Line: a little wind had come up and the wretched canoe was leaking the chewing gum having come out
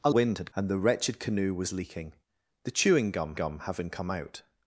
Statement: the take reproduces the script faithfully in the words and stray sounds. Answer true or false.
false